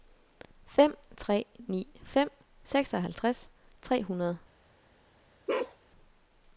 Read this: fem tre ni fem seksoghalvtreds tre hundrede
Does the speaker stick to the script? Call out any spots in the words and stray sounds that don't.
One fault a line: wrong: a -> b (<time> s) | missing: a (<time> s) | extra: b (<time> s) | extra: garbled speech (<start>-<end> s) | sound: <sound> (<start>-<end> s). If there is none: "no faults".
sound: bark (5.5-5.8 s)